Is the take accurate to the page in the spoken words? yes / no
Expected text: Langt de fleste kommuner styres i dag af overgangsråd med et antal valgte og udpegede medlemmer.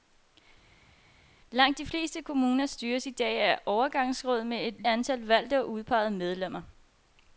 yes